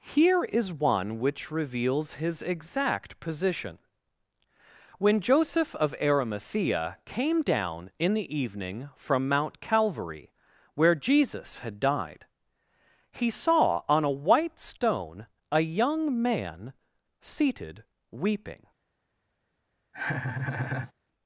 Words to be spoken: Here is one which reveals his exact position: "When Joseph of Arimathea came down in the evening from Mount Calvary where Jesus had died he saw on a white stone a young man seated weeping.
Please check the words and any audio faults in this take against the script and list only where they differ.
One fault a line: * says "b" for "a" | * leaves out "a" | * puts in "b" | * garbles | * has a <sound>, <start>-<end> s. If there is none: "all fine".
* has a laugh, 19.9-20.9 s